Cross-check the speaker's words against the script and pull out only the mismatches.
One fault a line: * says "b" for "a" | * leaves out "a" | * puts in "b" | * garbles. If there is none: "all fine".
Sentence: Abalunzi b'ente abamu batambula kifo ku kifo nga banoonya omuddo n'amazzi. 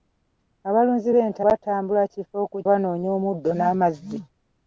* leaves out "abamu"
* leaves out "kifo nga"